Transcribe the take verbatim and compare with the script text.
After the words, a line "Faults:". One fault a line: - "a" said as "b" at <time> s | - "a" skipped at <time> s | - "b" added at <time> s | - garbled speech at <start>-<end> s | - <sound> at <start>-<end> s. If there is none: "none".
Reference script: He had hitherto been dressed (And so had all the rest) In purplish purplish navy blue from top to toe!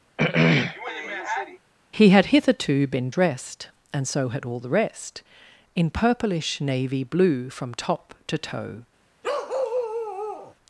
He had hitherto been dressed (And so had all the rest) In purplish navy blue from top to toe!
Faults:
- throat clearing at 0.2-1.6 s
- "purplish" skipped at 6.6 s
- bark at 9.2-10.5 s